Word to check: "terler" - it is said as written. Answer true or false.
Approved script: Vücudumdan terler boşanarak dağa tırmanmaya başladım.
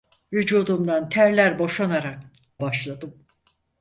true